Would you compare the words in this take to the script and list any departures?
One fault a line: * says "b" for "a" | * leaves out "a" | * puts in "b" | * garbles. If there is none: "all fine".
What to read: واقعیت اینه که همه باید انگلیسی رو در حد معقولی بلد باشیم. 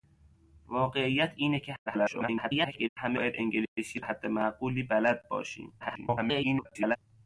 * garbles
* leaves out "در"
* garbles